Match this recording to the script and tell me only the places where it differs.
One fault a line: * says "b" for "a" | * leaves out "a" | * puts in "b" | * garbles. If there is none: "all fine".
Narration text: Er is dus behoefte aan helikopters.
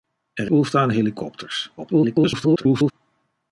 * leaves out "is dus"
* garbles